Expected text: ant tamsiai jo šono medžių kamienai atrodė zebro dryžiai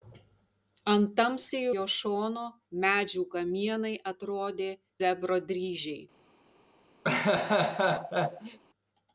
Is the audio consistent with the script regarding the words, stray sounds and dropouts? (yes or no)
no